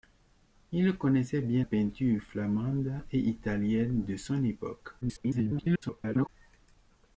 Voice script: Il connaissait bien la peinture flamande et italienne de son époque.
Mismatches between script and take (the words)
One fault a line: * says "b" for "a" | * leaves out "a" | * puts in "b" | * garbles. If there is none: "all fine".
* leaves out "la"
* garbles